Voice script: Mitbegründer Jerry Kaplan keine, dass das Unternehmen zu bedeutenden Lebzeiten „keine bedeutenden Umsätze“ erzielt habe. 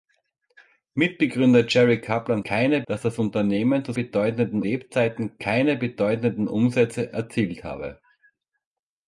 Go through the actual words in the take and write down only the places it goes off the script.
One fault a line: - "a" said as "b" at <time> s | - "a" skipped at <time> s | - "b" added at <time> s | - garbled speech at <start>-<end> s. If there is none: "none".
none